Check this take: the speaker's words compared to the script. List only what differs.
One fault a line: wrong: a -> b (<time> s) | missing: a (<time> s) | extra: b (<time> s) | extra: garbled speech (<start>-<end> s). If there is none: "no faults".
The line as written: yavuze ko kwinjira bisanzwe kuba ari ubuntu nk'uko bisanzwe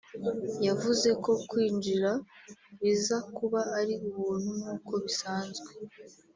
wrong: bisanzwe -> biza (2.8 s)